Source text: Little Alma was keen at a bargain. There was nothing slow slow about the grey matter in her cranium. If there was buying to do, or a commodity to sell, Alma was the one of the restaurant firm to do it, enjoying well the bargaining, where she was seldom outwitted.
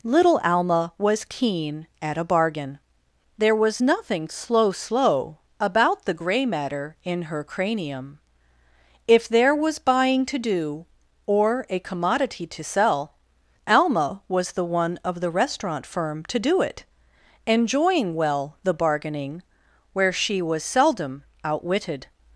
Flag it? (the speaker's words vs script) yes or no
no